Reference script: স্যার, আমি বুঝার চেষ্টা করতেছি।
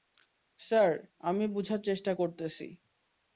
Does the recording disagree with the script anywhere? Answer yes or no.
no